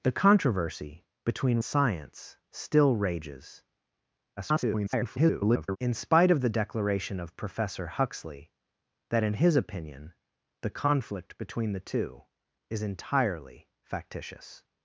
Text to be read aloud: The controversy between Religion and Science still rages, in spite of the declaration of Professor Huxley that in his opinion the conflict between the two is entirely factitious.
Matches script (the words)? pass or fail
fail